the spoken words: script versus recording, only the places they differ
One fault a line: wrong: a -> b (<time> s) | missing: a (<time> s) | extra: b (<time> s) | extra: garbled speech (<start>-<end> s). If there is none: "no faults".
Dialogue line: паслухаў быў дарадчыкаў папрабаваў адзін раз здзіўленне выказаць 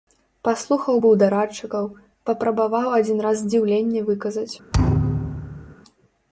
no faults